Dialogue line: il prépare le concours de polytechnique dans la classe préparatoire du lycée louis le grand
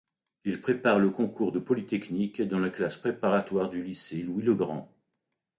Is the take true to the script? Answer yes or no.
yes